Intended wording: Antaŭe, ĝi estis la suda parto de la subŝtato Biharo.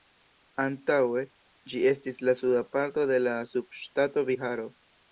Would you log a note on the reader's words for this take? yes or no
no